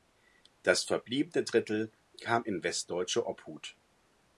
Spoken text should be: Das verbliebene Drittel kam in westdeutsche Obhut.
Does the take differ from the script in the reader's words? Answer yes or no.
no